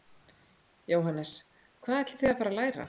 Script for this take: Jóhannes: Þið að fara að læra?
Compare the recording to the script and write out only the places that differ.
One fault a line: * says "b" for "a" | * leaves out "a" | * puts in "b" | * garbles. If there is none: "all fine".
* puts in "Hvað ætlið"